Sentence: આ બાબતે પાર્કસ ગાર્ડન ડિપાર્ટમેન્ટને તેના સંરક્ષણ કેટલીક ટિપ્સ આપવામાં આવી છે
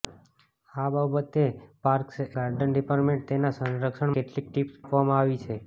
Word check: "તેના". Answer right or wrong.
right